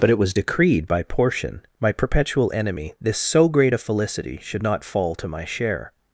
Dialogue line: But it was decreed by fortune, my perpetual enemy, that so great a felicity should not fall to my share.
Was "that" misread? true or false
true